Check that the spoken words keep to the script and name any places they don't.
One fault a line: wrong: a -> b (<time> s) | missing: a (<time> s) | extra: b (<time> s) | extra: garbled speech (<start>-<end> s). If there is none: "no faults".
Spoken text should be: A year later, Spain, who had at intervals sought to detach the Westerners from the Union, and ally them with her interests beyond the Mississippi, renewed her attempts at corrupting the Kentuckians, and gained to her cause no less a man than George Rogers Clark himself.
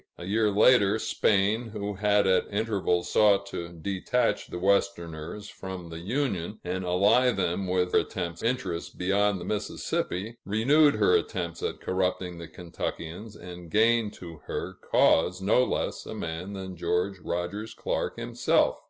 wrong: her -> attempts (8.0 s)